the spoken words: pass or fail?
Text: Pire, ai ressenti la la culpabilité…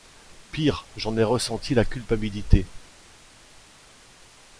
fail